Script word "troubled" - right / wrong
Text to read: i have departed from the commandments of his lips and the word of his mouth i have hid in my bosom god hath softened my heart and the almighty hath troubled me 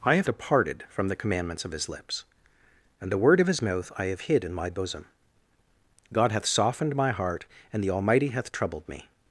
right